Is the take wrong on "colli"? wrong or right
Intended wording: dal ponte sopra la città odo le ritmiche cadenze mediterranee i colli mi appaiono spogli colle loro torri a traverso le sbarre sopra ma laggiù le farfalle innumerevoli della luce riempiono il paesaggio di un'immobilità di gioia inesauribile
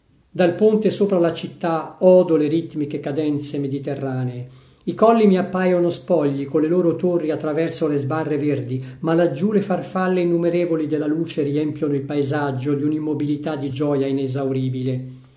right